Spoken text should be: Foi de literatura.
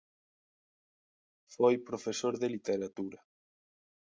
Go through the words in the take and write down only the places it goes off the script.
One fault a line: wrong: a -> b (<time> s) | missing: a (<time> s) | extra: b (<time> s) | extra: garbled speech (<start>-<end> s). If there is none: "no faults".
extra: profesor (1.9 s)